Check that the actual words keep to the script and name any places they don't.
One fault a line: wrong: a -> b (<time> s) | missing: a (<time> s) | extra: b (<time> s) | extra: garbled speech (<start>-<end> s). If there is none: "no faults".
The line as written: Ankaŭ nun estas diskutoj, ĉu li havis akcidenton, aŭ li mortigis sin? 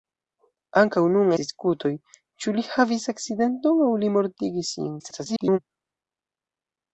missing: estas (1.3 s)
extra: garbled speech (5.0-5.6 s)